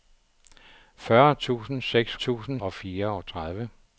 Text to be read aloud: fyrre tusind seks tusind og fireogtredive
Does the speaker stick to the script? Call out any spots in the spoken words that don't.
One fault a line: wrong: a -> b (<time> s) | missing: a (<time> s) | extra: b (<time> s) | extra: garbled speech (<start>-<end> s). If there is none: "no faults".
no faults